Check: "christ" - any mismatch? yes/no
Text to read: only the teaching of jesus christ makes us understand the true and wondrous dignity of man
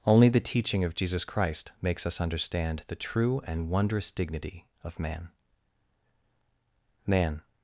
no